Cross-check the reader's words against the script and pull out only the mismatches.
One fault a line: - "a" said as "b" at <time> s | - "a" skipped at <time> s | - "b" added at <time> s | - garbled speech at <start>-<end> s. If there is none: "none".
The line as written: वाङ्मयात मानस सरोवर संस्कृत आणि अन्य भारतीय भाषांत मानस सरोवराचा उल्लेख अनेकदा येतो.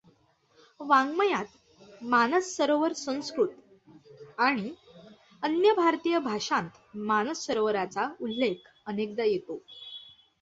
none